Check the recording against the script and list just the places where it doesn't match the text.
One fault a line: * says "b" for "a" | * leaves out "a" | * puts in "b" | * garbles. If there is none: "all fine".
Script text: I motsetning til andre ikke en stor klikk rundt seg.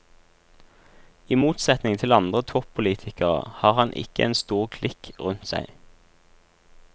* puts in "toppolitikere har han"